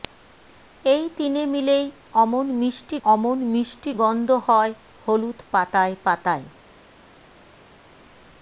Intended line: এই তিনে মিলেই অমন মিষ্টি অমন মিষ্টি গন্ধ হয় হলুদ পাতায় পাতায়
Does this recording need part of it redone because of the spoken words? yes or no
no